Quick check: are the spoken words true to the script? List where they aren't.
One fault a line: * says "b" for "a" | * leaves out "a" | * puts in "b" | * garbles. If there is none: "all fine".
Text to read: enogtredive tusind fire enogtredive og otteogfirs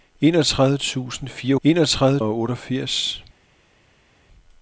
all fine